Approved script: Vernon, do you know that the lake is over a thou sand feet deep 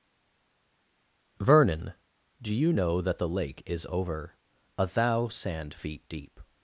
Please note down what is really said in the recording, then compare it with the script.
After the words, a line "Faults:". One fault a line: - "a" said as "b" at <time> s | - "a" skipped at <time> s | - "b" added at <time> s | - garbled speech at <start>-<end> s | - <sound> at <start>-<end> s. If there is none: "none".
Vernon, do you know that the lake is over a thou sand feet deep
Faults:
none